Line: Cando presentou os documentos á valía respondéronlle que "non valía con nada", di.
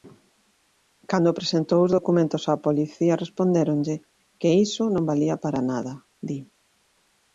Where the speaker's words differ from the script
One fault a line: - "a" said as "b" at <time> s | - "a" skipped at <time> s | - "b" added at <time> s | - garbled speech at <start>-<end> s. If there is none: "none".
- "valía" said as "policía" at 2.7 s
- "iso" added at 4.7 s
- "con" said as "para" at 5.4 s